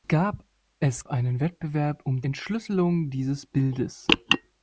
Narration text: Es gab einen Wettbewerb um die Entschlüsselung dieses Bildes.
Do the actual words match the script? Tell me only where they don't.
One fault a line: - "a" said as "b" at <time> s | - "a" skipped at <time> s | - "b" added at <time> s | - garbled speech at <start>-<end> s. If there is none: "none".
- "gab" skipped at 1.1 s
- "die" skipped at 2.2 s